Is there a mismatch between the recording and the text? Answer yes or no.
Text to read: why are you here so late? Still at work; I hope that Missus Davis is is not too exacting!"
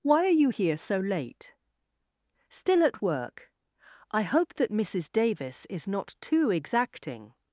yes